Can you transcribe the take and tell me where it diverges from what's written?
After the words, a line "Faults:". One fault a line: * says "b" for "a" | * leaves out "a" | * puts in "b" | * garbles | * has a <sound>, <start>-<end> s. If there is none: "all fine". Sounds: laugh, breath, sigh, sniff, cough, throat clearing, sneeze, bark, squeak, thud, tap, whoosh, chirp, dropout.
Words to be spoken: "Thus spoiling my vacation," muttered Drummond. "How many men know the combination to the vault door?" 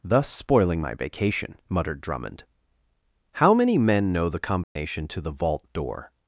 "Thus spoiling my vacation," muttered Drummond. "How many men know the combination to the vault door?"
Faults:
* has a dropout, 4.6-4.8 s